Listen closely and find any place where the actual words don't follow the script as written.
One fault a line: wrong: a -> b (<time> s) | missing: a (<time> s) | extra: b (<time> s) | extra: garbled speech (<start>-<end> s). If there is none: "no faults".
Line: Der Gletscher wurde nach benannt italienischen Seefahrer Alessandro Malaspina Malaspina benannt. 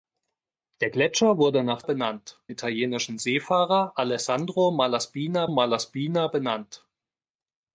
no faults